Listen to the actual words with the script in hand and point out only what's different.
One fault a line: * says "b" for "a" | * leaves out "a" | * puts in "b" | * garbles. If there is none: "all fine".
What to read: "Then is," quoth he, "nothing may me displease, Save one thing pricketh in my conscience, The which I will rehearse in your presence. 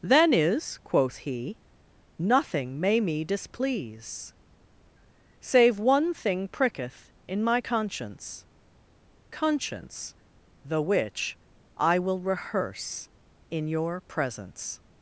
* puts in "conscience"